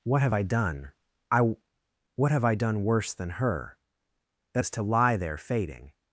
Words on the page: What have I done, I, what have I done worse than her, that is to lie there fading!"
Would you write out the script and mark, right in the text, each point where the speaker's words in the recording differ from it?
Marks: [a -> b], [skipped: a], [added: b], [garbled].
What have I done, I, what have I done worse than her, that is to lie there fading!"